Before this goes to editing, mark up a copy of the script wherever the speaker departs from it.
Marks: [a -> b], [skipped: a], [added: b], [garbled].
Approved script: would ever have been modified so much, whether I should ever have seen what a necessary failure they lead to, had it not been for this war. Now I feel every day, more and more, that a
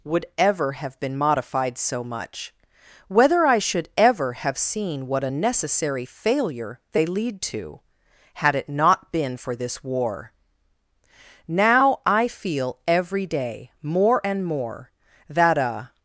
would ever have been modified so much, whether I should ever have seen what a necessary failure they lead to, had it not been for this war. Now I feel every day, more and more, that a